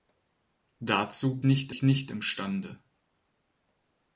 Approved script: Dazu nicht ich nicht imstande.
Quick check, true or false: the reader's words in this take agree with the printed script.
true